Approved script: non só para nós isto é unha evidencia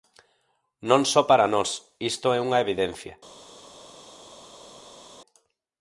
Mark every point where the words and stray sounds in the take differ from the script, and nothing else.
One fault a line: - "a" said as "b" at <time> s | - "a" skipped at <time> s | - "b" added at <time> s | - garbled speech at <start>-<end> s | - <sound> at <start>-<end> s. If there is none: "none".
none